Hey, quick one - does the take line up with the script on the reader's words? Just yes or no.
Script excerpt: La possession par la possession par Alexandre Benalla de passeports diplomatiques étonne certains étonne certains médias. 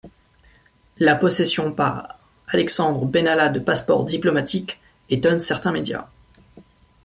no